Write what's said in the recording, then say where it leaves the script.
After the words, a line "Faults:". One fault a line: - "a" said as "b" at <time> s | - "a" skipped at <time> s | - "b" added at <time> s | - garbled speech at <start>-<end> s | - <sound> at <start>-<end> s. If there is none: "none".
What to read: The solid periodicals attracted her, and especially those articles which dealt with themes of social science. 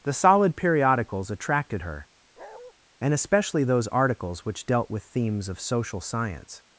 The solid periodicals attracted her, and especially those articles which dealt with themes of social science.
Faults:
- bark at 2.4-2.7 s